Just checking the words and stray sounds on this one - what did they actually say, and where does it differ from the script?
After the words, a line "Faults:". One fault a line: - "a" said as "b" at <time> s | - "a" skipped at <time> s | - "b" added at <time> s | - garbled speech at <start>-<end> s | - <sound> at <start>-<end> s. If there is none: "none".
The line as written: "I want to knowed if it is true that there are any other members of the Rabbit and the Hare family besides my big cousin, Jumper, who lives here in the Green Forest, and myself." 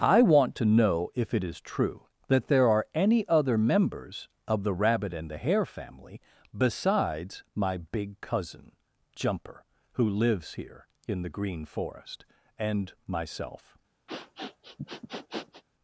"I want to know if it is true that there are any other members of the Rabbit and the Hare family besides my big cousin, Jumper, who lives here in the Green Forest, and myself."
Faults:
- "knowed" said as "know" at 0.6 s
- sniff at 14.1-15.6 s